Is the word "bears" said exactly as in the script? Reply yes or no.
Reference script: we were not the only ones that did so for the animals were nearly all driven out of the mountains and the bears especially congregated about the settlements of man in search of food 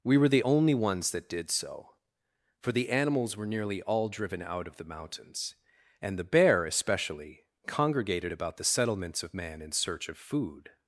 no